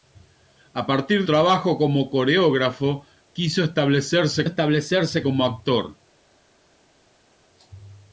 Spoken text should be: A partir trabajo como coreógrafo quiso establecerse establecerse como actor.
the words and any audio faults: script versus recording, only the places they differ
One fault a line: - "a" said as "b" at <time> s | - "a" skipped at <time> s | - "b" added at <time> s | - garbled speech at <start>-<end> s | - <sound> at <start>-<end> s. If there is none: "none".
none